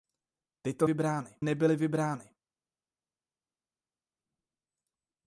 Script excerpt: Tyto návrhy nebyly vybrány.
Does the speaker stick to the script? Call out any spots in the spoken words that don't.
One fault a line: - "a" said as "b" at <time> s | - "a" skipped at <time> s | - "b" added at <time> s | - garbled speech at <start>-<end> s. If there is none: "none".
- "návrhy" said as "vybrány" at 0.8 s